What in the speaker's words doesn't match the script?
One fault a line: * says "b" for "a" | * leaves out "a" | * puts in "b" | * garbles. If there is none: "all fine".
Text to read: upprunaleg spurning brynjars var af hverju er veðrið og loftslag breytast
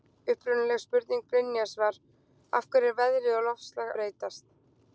all fine